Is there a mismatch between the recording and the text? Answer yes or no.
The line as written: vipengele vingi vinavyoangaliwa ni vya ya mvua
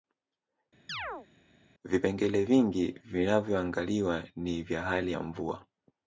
yes